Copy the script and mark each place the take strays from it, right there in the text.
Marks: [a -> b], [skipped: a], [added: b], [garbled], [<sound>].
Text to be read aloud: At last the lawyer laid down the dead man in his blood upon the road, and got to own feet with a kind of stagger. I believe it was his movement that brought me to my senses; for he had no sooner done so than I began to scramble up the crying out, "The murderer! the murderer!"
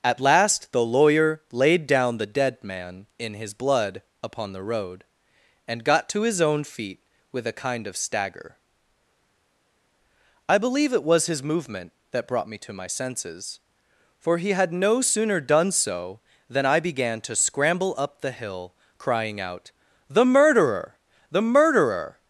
At last the lawyer laid down the dead man in his blood upon the road, and got to [added: his] own feet with a kind of stagger. I believe it was his movement that brought me to my senses; for he had no sooner done so than I began to scramble up the [added: hill] crying out, "The murderer! the murderer!"